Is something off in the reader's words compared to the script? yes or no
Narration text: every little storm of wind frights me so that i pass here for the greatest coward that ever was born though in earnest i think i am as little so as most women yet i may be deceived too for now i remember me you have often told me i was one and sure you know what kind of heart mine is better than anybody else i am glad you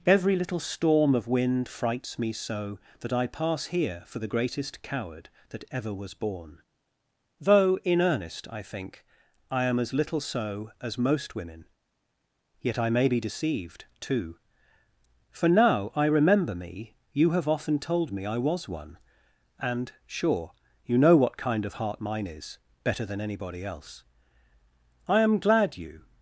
no